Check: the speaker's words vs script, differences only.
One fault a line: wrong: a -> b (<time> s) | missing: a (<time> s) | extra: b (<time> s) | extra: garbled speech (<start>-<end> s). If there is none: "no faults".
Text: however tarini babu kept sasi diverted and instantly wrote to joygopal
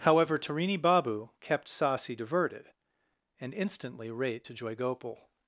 wrong: wrote -> rate (4.1 s)